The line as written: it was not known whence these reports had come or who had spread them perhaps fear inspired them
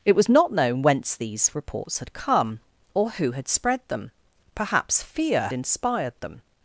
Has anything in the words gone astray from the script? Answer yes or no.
no